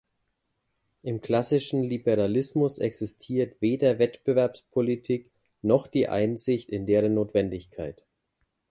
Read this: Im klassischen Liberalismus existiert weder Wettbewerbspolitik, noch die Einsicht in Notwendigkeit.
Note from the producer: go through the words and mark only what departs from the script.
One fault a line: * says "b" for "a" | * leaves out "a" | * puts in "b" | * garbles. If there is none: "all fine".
* puts in "deren"